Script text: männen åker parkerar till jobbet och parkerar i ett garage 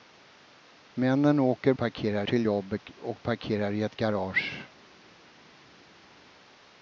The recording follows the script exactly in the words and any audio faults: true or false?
true